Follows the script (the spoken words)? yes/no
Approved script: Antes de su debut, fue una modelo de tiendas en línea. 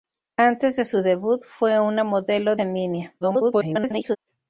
no